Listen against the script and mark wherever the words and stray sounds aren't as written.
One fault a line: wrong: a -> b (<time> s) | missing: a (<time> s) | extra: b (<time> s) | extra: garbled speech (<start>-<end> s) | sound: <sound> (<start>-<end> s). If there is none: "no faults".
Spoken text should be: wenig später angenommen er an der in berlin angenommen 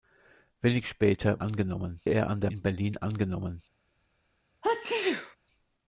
sound: sneeze (4.6-5.4 s)